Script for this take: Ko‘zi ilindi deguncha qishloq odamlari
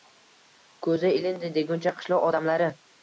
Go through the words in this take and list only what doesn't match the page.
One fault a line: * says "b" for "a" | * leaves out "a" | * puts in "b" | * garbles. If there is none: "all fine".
all fine